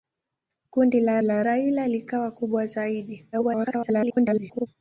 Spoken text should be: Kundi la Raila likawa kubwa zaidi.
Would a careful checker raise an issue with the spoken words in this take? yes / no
yes